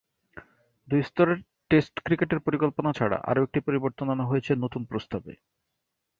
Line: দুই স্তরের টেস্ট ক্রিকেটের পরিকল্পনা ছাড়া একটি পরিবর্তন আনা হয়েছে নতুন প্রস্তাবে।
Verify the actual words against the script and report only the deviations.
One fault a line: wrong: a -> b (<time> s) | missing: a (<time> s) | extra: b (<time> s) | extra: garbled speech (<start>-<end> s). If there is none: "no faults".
extra: আরও (3.2 s)